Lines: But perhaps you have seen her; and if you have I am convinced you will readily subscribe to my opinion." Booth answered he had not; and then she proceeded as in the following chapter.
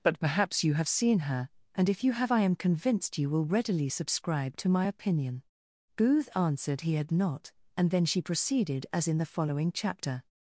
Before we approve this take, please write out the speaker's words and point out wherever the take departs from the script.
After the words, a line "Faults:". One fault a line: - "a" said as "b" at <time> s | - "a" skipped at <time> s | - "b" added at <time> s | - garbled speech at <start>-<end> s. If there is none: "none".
But perhaps you have seen her; and if you have I am convinced you will readily subscribe to my opinion." Booth answered he had not; and then she proceeded as in the following chapter.
Faults:
none